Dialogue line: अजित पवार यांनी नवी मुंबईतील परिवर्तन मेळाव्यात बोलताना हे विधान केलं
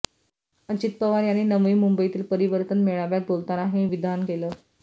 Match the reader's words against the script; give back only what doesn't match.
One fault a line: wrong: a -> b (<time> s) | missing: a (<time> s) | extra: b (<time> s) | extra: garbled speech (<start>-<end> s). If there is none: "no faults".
no faults